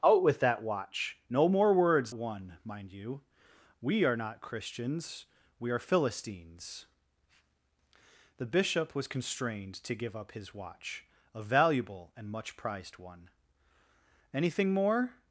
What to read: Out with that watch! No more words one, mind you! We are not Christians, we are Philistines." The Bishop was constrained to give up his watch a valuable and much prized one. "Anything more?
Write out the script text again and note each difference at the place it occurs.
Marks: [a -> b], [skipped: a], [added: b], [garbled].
Out with that watch! No more words one, mind you! We are not Christians, we are Philistines." The Bishop was constrained to give up his watch a valuable and much prized one. "Anything more?